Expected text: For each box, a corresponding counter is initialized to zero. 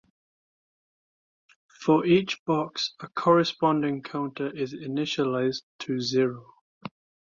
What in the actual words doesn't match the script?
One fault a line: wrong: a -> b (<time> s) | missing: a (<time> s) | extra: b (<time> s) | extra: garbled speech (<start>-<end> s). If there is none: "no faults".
no faults